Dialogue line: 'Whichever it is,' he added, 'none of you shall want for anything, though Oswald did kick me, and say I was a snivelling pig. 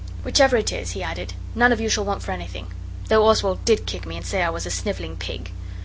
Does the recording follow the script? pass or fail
pass